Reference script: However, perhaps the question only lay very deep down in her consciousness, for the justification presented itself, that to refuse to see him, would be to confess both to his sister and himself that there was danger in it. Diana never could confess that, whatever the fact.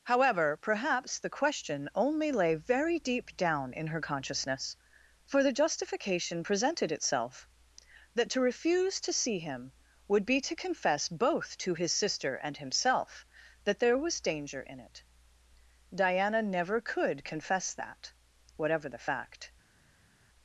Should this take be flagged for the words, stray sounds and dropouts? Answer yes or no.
no